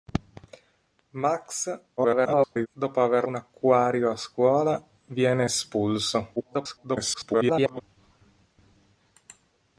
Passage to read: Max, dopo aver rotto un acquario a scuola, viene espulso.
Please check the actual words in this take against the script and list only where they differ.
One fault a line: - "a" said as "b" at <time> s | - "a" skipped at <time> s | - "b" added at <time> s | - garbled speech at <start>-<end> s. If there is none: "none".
- garbled speech at 2.0-2.7 s
- "rotto" skipped at 3.2 s
- garbled speech at 6.4-7.8 s